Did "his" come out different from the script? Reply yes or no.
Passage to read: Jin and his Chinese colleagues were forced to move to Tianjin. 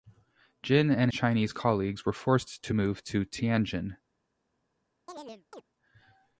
yes